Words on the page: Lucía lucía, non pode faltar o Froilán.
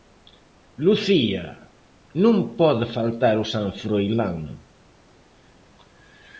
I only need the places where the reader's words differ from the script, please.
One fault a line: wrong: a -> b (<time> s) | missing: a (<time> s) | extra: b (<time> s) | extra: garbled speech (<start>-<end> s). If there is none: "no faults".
missing: lucía (1.4 s)
extra: San (3.5 s)